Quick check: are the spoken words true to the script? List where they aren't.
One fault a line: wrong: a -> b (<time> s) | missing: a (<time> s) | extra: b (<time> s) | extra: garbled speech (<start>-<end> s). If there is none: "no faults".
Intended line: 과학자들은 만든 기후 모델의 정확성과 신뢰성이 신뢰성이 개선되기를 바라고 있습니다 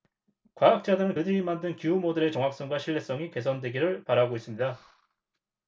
extra: 그들이 (1.1 s)
missing: 신뢰성이 (3.3 s)